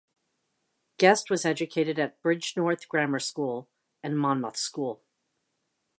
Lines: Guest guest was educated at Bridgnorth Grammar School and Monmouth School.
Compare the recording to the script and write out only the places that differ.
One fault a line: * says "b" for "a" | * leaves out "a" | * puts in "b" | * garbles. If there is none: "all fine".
* leaves out "guest"